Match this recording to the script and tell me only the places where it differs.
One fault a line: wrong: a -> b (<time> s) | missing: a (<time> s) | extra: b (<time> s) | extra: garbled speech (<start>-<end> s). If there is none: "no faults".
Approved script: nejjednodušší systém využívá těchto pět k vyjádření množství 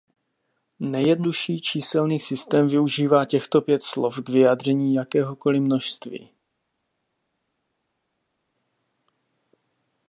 extra: číselný (1.6 s)
extra: slov (3.8 s)
extra: jakéhokoli (4.9 s)